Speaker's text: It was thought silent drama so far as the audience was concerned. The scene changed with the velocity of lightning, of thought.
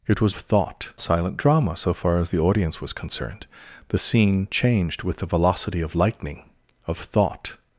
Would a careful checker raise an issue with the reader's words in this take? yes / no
no